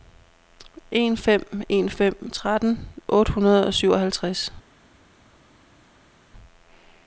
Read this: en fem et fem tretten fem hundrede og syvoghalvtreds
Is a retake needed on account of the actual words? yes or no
yes